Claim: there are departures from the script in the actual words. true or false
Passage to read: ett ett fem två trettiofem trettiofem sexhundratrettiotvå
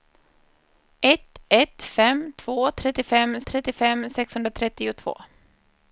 false